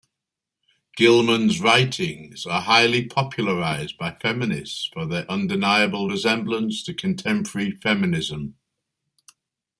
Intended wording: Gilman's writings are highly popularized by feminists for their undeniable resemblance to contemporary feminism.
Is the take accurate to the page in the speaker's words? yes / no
yes